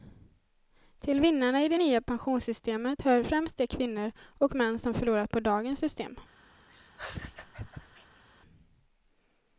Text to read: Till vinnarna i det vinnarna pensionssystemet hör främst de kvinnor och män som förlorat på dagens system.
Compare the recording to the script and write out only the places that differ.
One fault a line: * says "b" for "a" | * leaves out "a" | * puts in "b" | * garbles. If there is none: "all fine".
* says "nya" for "vinnarna"